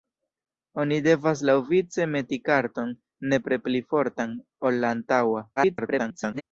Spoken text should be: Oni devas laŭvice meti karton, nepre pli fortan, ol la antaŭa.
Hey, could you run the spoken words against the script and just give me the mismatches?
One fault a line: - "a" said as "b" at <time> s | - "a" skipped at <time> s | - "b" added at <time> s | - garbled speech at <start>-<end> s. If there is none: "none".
- garbled speech at 5.6-6.4 s